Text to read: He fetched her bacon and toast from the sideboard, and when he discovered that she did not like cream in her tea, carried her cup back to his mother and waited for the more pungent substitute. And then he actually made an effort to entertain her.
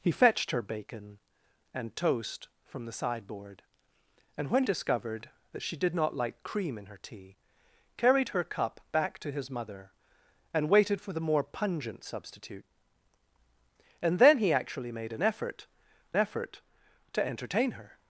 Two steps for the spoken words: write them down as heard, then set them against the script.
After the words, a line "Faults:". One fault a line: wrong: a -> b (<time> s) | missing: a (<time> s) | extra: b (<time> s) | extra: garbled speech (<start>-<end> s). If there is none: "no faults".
He fetched her bacon and toast from the sideboard, and when discovered that she did not like cream in her tea, carried her cup back to his mother and waited for the more pungent substitute. And then he actually made an effort effort to entertain her.
Faults:
missing: he (4.6 s)
extra: effort (16.2 s)